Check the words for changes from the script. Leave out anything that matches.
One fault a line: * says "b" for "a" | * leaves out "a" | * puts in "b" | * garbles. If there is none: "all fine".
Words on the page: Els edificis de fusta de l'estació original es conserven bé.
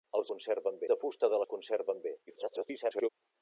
* says "conserven" for "edificis"
* leaves out "l'estació original"
* garbles